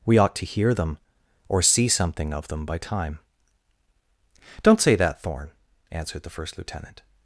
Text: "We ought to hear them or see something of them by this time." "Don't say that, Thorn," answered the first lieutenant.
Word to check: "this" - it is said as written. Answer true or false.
false